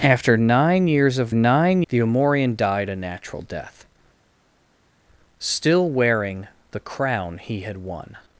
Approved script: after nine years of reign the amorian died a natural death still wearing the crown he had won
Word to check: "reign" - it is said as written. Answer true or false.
false